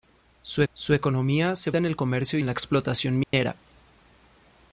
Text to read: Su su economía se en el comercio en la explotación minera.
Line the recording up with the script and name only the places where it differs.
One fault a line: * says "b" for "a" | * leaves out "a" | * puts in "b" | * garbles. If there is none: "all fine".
all fine